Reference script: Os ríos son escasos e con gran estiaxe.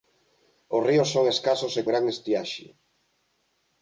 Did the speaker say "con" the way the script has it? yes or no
no